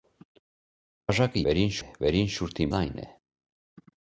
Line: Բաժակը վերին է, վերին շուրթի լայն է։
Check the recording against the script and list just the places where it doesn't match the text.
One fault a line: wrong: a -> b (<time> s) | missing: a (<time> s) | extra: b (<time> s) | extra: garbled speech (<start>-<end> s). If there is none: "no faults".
no faults